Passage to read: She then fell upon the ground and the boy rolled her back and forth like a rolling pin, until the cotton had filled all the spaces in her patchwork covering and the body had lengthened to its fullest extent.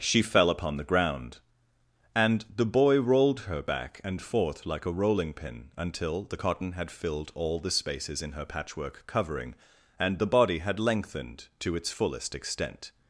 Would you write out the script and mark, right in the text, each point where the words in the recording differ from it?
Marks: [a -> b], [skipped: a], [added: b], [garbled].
She [skipped: then] fell upon the ground and the boy rolled her back and forth like a rolling pin, until the cotton had filled all the spaces in her patchwork covering and the body had lengthened to its fullest extent.